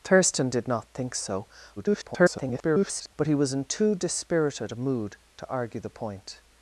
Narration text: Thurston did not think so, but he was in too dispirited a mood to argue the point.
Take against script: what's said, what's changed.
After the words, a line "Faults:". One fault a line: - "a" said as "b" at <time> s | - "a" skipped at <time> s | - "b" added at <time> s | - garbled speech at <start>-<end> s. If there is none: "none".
Thurston did not think so, [garbled] but he was in too dispirited a mood to argue the point.
Faults:
- garbled speech at 1.8-3.1 s